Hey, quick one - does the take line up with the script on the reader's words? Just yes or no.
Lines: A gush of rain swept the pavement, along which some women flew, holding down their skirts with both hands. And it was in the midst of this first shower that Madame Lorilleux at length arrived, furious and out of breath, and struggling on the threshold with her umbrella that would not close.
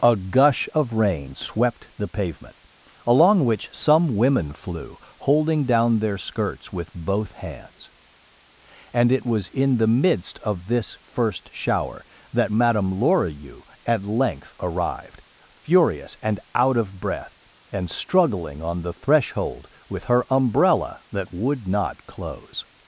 yes